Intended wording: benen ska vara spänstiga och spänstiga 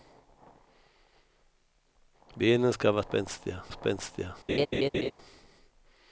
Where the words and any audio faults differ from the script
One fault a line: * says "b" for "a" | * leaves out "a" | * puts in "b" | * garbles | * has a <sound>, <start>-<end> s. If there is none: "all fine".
* has a laugh, 4.5-5.1 s